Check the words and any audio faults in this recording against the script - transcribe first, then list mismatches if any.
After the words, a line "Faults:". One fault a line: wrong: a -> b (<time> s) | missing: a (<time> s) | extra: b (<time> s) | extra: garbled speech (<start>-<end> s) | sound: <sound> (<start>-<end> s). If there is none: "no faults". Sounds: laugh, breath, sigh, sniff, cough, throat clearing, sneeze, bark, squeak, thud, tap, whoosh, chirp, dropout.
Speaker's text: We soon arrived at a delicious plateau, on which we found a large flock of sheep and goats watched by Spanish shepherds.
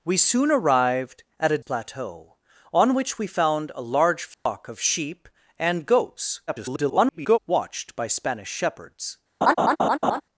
We soon arrived at a plateau, on which we found a large flock of sheep and goats [garbled] watched by Spanish shepherds.
Faults:
missing: delicious (1.6 s)
sound: dropout (4.3-4.5 s)
extra: garbled speech (6.5-7.4 s)
sound: laugh (9.4-10.2 s)